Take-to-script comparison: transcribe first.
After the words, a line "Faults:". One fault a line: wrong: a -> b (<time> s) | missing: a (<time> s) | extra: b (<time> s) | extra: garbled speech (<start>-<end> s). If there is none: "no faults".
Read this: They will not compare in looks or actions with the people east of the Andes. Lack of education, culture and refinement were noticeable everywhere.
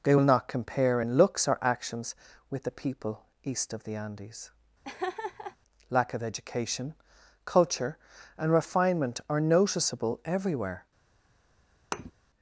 They will not compare in looks or actions with the people east of the Andes. Lack of education, culture and refinement are noticeable everywhere.
Faults:
wrong: were -> are (9.3 s)